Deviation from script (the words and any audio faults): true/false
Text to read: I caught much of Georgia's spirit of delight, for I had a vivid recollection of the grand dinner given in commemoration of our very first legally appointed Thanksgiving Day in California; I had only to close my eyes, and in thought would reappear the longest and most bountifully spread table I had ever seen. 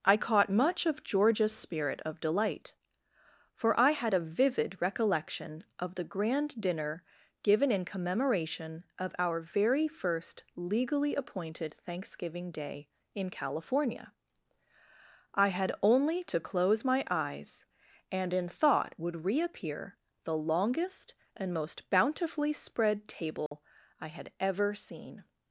true